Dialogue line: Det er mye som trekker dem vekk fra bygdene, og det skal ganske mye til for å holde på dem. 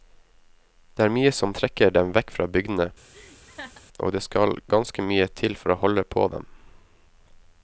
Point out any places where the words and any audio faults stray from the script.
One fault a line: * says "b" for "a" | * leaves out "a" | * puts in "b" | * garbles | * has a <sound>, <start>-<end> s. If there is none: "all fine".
* has a laugh, 3.1-3.9 s